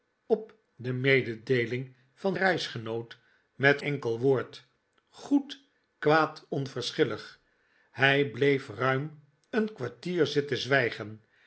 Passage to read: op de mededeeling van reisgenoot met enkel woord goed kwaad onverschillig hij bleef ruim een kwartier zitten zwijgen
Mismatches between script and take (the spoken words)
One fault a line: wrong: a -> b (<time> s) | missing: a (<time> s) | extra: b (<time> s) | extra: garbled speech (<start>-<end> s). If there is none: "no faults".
no faults